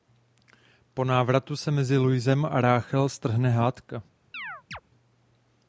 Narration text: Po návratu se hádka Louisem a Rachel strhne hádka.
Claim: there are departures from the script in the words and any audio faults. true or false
true